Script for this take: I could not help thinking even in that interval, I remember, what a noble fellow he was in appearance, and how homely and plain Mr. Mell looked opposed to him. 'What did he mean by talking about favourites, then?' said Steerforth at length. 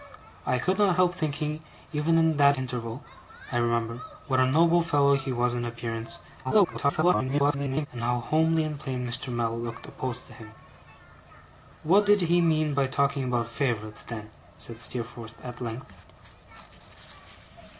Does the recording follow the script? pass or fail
fail